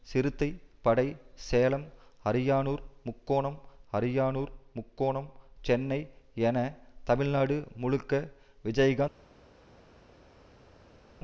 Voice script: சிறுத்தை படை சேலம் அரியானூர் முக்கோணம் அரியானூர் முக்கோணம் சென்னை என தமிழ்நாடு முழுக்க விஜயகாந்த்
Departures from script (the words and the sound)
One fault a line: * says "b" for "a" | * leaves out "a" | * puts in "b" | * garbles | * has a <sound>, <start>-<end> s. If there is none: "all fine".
all fine